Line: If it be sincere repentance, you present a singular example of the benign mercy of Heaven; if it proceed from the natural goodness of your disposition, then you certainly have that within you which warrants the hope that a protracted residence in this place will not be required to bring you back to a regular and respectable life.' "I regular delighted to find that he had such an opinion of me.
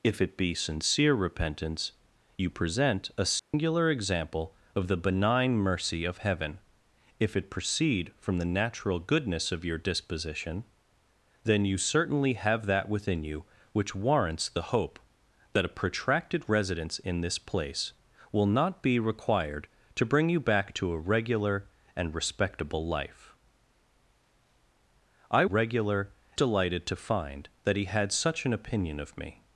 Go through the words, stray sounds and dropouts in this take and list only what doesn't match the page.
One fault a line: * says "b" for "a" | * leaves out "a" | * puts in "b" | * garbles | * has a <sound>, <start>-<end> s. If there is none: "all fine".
* has a dropout, 3.4-3.5 s